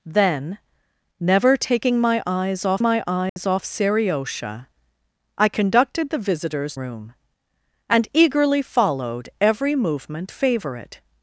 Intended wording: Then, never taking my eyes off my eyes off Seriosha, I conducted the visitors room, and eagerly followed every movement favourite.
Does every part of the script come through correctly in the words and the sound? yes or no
no